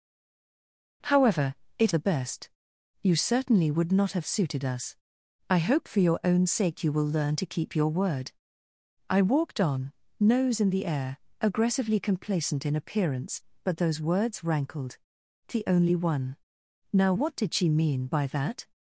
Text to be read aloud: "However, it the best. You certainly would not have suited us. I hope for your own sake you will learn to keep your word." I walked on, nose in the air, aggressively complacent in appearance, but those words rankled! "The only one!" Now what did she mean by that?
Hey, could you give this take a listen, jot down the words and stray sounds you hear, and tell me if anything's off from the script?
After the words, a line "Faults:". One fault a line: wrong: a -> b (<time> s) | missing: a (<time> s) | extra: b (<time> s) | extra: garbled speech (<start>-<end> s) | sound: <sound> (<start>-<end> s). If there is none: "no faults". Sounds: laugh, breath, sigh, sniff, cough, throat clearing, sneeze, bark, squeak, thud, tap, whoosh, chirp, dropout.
"However, it the best. You certainly would not have suited us. I hope for your own sake you will learn to keep your word." I walked on, nose in the air, aggressively complacent in appearance, but those words rankled! "The only one!" Now what did she mean by that?
Faults:
no faults